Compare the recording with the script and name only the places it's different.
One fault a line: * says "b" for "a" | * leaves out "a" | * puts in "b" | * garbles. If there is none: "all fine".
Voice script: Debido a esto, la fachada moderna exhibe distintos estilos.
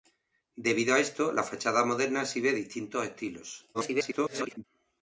* garbles